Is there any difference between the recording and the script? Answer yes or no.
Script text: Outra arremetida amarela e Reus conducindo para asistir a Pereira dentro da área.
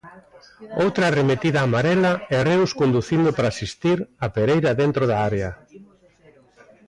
no